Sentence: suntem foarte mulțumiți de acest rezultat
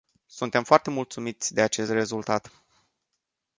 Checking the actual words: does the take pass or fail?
pass